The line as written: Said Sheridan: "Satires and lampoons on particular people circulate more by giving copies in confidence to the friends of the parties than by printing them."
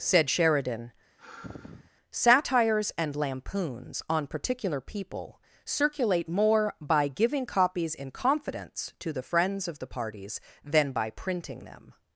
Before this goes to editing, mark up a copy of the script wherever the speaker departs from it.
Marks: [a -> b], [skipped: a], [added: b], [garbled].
Said Sheridan: "Satires and lampoons on particular people circulate more by giving copies in confidence to the friends of the parties than by printing them."